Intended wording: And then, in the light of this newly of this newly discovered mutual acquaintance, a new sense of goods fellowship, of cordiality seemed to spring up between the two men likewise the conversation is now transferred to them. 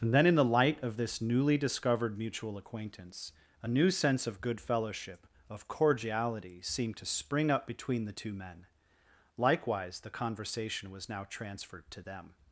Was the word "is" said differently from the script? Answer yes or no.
yes